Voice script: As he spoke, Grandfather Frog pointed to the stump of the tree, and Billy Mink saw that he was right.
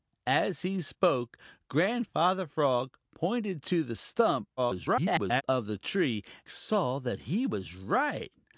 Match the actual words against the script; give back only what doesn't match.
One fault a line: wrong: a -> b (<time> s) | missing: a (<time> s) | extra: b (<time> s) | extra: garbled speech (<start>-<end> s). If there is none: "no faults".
extra: garbled speech (4.6-5.4 s)
missing: and Billy Mink (6.2 s)